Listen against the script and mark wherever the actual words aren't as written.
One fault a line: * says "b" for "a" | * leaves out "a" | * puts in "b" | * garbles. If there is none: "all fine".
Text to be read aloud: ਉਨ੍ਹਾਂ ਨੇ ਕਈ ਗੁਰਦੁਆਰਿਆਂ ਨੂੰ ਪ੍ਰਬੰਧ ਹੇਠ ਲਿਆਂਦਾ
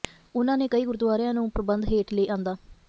all fine